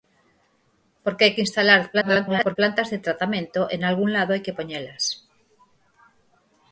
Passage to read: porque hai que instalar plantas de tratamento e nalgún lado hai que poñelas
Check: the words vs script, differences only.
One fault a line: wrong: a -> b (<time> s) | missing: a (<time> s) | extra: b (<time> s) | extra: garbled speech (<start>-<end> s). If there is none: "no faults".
extra: garbled speech (1.9-2.6 s)